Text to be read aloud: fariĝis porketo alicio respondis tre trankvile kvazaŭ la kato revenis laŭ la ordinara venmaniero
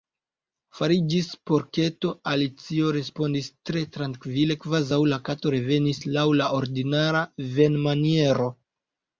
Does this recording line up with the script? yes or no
yes